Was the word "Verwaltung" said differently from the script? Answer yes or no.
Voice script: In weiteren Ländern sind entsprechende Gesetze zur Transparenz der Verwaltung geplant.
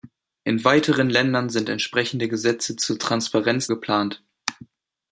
yes